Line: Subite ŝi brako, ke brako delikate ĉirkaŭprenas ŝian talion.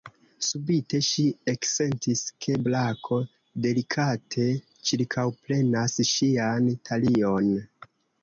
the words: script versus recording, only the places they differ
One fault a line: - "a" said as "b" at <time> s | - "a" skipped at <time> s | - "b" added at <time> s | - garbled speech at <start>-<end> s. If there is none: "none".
- "brako" said as "eksentis" at 1.5 s